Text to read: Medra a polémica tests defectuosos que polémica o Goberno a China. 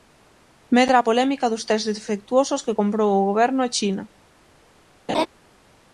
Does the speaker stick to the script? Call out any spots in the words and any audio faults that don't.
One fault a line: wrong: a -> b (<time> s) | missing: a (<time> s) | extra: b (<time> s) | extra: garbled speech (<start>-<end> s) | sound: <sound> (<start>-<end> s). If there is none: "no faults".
extra: dos (1.5 s)
wrong: polémica -> comprou (2.8 s)
sound: laugh (5.1-5.3 s)